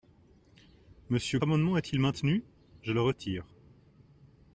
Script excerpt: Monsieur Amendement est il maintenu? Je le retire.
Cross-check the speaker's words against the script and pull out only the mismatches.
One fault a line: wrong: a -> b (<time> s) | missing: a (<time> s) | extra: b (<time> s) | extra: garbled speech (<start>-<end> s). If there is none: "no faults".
no faults